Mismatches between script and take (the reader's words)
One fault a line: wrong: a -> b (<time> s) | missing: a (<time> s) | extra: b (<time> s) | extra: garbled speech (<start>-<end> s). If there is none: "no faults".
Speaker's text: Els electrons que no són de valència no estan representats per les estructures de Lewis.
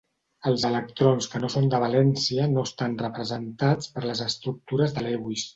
no faults